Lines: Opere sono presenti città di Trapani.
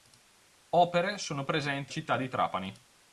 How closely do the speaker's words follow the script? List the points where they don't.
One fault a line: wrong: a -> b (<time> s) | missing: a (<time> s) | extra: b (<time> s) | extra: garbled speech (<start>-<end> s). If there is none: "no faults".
no faults